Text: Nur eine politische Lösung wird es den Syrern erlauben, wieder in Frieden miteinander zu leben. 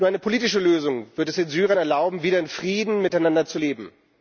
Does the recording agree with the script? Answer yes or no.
yes